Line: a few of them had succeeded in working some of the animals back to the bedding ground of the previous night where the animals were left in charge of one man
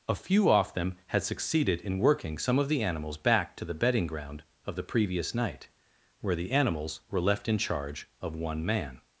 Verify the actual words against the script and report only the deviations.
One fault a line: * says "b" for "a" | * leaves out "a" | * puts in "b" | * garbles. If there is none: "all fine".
* says "off" for "of"